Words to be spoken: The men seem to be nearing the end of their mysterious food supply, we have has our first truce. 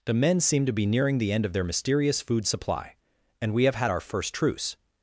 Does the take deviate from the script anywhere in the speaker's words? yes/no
yes